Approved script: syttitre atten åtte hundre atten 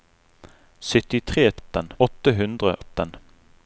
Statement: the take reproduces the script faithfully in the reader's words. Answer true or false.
true